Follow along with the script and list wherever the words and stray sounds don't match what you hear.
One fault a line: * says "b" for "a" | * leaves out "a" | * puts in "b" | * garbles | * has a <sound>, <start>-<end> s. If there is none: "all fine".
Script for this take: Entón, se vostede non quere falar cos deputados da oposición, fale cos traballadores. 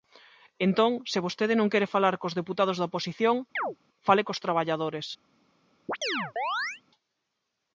* has a chirp, 3.6-3.8 s
* has a chirp, 5.9-6.8 s